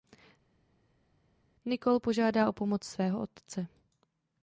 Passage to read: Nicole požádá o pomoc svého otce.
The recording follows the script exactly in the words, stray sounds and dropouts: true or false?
true